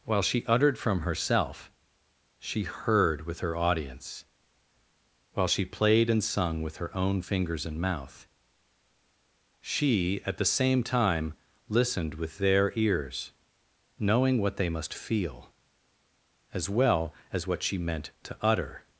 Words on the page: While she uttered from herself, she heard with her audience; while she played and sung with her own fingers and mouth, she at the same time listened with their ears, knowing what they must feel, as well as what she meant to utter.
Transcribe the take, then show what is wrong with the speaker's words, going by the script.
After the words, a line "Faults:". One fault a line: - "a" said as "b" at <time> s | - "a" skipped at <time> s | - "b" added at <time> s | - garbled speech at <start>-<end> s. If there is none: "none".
While she uttered from herself, she heard with her audience; while she played and sung with her own fingers and mouth, she at the same time listened with their ears, knowing what they must feel, as well as what she meant to utter.
Faults:
none